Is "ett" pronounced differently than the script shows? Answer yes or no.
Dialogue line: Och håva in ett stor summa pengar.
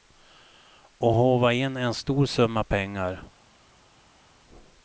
yes